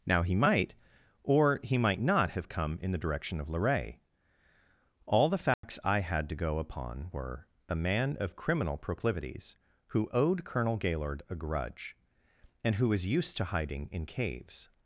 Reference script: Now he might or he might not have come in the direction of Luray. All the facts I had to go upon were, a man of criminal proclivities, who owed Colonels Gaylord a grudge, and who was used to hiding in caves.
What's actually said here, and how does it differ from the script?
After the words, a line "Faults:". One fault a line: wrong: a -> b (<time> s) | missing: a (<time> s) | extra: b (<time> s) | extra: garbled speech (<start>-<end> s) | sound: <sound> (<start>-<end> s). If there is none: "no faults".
Now he might or he might not have come in the direction of Luray. All the facts I had to go upon were, a man of criminal proclivities, who owed Colonel Gaylord a grudge, and who was used to hiding in caves.
Faults:
sound: dropout (5.5-5.6 s)
wrong: Colonels -> Colonel (10.4 s)